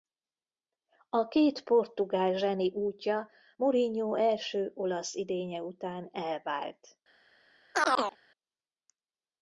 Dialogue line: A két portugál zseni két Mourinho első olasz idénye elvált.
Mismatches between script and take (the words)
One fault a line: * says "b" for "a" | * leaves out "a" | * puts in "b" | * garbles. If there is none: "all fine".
* says "útja" for "két"
* puts in "után"